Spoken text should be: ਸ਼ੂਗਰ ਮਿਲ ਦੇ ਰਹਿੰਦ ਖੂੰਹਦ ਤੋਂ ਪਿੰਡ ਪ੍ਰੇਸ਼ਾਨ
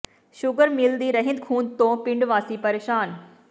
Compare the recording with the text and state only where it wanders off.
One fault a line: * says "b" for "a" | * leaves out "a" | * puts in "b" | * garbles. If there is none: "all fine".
* says "ਦੀ" for "ਦੇ"
* puts in "ਵਾਸੀ"